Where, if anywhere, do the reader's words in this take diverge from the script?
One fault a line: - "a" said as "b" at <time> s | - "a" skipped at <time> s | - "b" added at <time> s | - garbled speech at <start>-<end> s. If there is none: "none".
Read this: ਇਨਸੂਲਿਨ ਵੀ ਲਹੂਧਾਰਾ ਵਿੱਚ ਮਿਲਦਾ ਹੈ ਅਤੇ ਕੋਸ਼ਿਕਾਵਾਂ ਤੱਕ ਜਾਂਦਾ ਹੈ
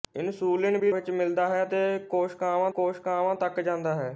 - "ਲਹੂਧਾਰਾ" skipped at 0.9 s
- "ਕੋਸ਼ਿਕਾਵਾਂ" added at 2.7 s